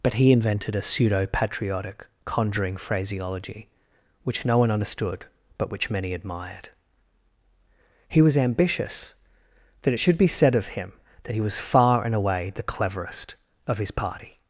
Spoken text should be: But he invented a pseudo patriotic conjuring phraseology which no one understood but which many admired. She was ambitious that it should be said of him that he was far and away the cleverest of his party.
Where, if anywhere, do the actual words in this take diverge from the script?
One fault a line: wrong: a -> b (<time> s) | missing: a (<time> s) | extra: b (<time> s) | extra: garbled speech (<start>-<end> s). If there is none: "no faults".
wrong: She -> He (8.1 s)